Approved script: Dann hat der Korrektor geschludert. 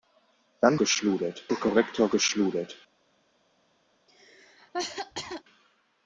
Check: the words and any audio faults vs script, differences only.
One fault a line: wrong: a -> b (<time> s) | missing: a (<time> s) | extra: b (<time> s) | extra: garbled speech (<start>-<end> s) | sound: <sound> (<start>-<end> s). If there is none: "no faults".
wrong: hat -> geschludert (0.8 s)
sound: cough (4.1-5.4 s)